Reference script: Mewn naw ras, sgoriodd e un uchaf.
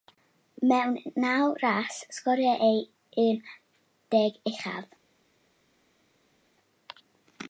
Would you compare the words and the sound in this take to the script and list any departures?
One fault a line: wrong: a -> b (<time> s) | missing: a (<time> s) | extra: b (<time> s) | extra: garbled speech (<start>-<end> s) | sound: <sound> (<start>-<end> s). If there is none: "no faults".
extra: deg (4.2 s)